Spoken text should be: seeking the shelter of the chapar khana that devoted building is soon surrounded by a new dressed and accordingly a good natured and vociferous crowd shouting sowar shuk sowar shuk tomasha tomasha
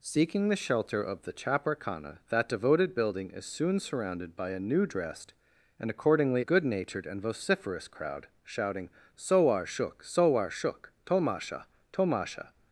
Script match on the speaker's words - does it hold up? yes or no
no